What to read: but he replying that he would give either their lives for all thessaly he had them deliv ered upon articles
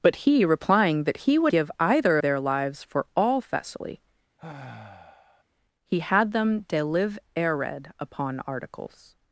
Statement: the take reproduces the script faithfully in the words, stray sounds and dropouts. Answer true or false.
false